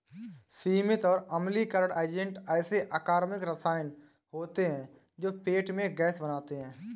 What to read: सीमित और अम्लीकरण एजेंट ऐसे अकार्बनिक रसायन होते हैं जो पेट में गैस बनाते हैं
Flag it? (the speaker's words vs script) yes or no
no